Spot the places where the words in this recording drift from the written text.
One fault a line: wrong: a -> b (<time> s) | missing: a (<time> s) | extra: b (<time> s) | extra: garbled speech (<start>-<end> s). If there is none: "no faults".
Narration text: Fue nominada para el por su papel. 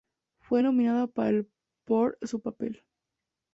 no faults